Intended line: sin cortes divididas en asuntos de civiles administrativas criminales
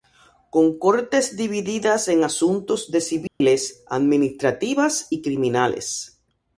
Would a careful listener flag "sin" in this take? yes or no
yes